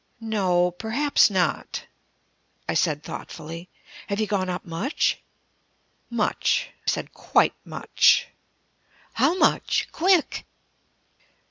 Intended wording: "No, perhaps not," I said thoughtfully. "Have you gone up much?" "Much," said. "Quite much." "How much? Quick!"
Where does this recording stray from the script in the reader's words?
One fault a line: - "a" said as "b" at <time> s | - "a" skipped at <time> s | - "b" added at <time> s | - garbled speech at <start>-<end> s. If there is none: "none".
none